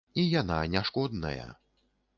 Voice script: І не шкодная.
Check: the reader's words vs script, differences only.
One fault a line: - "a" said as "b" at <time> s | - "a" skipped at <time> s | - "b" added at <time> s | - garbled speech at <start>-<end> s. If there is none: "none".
- "яна" added at 0.4 s